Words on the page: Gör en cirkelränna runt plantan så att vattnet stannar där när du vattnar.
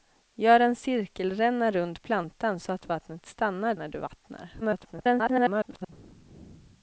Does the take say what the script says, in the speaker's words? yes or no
no